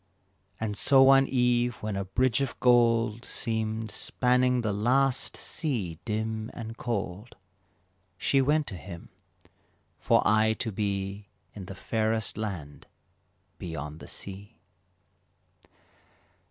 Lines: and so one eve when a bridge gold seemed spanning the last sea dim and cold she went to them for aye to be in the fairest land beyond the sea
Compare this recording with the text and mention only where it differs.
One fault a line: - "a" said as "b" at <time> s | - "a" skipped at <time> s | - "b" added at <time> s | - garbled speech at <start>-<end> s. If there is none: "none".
- "of" added at 2.4 s
- "them" said as "him" at 8.8 s